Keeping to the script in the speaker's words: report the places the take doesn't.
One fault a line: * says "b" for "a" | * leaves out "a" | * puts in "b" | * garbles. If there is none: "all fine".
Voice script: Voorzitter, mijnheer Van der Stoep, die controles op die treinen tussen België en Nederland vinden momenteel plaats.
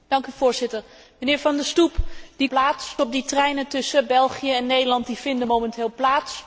* says "plaats" for "controles"